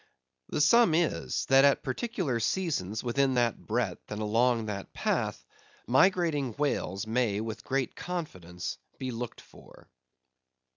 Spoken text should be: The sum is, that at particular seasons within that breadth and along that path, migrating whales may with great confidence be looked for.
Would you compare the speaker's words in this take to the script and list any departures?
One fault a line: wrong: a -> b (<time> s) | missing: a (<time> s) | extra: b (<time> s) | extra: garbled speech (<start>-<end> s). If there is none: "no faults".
no faults